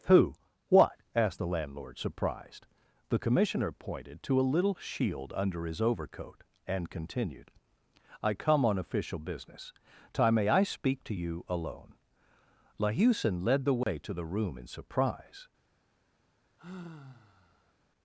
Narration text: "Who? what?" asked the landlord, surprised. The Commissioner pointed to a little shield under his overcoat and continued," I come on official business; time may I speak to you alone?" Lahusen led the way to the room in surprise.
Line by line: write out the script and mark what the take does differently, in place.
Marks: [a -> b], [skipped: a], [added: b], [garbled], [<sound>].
"Who? what?" asked the landlord, surprised. The Commissioner pointed to a little shield under his overcoat and continued," I come on official business; time may I speak to you alone?" Lahusen led the way [dropout] to the room in surprise. [sigh]